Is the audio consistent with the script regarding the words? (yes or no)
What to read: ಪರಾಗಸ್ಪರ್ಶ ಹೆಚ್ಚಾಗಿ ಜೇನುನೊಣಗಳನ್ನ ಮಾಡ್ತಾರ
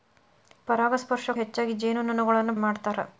yes